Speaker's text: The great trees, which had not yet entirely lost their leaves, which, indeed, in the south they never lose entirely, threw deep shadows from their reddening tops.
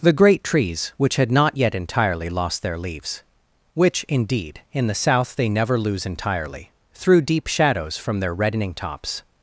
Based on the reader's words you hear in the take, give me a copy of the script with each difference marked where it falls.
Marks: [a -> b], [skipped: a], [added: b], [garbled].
The great trees, which had not yet entirely lost their leaves, which, indeed, in the south they never lose entirely, threw deep shadows from their reddening tops.